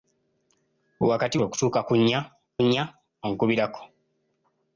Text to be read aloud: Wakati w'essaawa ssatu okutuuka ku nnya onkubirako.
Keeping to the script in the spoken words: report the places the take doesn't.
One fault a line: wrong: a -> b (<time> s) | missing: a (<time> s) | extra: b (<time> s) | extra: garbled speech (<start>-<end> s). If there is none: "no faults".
missing: w'essaawa ssatu (1.4 s)
extra: nnya (2.6 s)